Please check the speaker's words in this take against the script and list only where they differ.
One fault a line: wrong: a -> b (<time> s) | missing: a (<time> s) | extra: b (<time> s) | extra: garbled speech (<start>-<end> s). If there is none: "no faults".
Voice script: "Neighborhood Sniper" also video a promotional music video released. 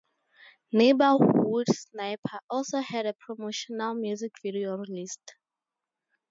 wrong: video -> had (2.8 s)